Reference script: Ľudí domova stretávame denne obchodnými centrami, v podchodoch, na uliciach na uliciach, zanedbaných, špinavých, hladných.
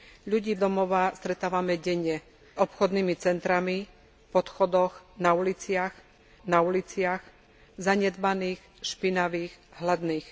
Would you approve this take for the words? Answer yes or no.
yes